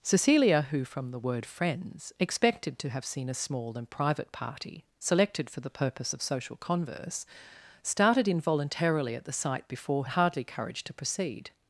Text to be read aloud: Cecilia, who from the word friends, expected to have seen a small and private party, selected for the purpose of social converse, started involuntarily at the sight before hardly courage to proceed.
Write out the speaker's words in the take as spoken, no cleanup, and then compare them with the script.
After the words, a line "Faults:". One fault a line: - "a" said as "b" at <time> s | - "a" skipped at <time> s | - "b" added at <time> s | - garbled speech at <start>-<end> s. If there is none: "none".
Cecilia, who from the word friends, expected to have seen a small and private party, selected for the purpose of social converse, started involuntarily at the sight before hardly courage to proceed.
Faults:
none